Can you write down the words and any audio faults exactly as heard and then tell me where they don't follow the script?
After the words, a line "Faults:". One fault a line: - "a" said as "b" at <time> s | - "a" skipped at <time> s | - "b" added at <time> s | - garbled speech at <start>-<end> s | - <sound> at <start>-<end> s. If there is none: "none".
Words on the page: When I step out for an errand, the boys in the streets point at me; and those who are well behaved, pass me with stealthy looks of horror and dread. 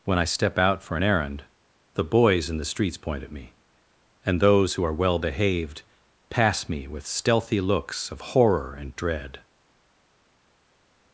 When I step out for an errand, the boys in the streets point at me; and those who are well behaved, pass me with stealthy looks of horror and dread.
Faults:
none